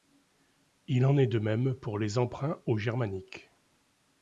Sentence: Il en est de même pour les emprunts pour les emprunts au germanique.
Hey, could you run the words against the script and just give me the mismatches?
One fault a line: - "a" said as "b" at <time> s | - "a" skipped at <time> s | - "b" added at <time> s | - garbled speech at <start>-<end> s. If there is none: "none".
- "pour les emprunts" skipped at 2.6 s